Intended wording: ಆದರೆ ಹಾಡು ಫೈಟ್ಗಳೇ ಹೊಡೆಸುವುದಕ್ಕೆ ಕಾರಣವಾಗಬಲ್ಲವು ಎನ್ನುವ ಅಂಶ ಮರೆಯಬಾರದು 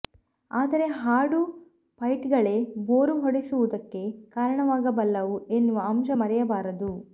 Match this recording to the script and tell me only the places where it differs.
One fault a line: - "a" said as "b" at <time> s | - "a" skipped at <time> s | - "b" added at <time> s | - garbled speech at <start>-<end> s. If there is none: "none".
- "ಬೋರು" added at 2.9 s